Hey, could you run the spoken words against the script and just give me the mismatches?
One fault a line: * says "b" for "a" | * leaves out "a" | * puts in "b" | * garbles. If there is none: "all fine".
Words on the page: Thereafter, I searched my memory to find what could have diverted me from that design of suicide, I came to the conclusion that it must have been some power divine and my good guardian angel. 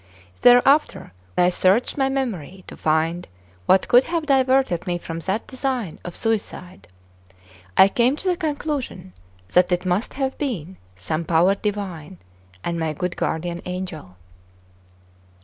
all fine